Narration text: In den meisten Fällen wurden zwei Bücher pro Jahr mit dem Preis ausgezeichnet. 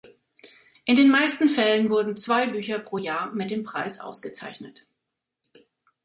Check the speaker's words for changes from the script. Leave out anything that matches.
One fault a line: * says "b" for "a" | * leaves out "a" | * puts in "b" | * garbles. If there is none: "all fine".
all fine